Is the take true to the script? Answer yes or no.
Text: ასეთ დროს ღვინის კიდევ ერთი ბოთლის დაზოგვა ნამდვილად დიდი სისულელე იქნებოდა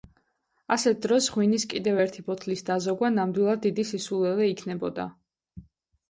yes